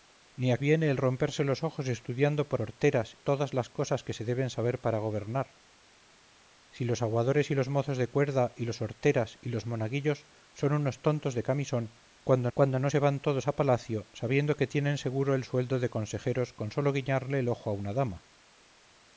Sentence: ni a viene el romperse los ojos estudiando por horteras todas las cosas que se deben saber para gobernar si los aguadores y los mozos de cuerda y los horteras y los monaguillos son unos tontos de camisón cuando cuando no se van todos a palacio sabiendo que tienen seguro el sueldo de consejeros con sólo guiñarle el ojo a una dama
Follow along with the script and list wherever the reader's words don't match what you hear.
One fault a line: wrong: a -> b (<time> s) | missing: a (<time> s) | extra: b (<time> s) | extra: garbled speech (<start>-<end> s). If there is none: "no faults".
no faults